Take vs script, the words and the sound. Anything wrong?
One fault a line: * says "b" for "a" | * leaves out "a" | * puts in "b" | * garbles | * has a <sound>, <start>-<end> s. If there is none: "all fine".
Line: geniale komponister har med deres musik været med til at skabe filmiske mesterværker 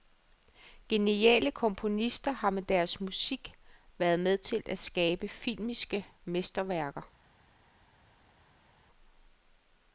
all fine